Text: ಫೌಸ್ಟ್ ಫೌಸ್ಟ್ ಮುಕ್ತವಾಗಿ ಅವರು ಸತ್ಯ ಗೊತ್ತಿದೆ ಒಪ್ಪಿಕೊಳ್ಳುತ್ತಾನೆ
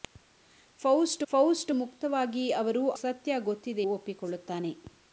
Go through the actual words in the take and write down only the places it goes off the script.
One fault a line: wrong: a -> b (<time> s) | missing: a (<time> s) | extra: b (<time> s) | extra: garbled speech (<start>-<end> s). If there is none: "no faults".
no faults